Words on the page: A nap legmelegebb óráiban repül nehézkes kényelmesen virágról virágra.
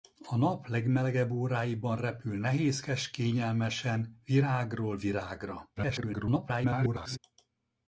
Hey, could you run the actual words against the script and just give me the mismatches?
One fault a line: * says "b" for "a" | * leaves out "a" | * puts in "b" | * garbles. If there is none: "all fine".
* garbles